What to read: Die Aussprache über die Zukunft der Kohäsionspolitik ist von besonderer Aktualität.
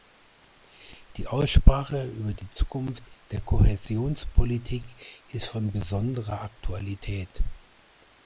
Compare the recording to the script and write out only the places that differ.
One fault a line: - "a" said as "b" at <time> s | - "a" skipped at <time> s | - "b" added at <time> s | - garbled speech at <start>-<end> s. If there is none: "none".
none